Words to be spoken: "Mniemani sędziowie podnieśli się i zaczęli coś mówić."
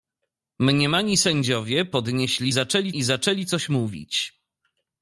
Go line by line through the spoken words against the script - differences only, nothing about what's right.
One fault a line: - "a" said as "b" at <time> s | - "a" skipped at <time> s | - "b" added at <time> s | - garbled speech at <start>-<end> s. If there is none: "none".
- "się" said as "zaczęli" at 2.5 s